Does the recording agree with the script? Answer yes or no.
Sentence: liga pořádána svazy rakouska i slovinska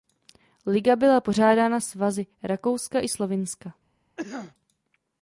no